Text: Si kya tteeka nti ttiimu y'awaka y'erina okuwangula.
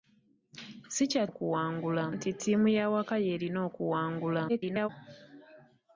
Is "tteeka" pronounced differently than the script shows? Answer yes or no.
yes